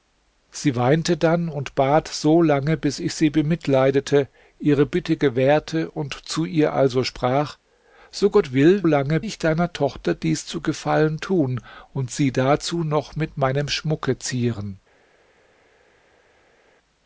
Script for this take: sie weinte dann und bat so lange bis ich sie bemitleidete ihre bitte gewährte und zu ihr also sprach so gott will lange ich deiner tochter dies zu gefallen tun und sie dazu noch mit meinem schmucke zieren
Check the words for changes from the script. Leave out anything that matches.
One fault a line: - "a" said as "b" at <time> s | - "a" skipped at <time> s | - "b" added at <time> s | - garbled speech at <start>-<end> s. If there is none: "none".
none